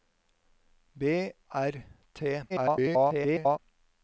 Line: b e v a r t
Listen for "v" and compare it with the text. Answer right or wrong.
wrong